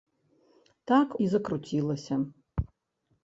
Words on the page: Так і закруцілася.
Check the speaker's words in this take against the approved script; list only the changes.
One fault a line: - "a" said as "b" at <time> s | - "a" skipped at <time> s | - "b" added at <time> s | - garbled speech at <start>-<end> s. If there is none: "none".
none